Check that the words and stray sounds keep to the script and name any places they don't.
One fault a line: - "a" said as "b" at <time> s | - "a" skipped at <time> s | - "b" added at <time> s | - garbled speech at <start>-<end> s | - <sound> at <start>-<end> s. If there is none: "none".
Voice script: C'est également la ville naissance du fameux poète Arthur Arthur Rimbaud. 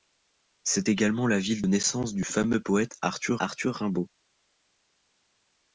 none